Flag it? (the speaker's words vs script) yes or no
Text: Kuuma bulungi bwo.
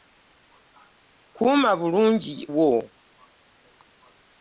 no